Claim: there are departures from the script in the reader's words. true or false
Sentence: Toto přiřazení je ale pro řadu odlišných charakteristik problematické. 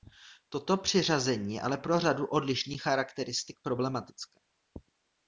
false